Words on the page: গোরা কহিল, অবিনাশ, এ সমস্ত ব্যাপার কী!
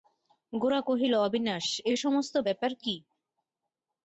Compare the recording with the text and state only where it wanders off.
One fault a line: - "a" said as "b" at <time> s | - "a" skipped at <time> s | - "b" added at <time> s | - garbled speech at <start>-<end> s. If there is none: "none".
none